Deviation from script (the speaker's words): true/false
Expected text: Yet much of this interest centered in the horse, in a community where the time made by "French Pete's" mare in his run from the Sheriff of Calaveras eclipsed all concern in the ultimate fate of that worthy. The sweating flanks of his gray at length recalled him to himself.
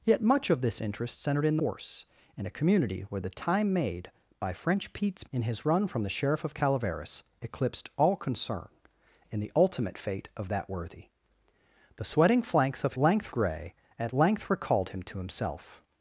true